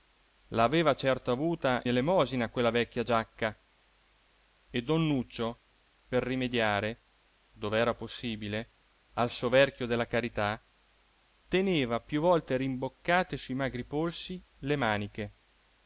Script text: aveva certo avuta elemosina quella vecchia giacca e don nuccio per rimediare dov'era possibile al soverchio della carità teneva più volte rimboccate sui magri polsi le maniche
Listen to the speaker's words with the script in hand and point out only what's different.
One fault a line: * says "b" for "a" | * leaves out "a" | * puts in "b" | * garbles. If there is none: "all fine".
all fine